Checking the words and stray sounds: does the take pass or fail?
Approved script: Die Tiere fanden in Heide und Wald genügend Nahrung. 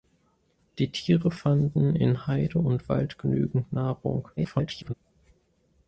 fail